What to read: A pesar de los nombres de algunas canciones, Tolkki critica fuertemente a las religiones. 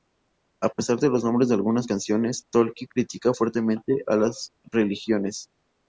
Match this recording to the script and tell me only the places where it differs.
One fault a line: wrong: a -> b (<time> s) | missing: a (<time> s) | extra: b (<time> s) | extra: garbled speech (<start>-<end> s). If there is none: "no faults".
no faults